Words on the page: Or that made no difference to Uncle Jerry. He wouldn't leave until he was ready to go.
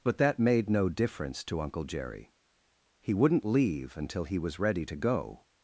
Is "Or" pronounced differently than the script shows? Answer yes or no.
yes